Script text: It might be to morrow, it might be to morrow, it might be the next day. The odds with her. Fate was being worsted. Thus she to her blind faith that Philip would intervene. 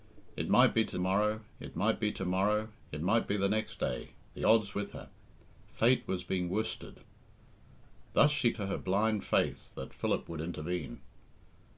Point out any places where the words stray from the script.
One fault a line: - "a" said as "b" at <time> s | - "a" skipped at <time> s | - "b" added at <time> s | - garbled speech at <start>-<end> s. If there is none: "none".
none